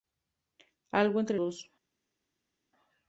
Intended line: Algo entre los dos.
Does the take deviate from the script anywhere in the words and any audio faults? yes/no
yes